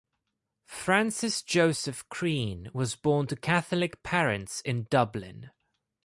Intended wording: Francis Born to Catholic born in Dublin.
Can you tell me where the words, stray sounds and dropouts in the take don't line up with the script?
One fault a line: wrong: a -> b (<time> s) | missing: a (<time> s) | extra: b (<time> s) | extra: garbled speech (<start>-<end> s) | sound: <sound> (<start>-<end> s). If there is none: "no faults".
extra: Joseph Crean was (1.4 s)
wrong: born -> parents (4.0 s)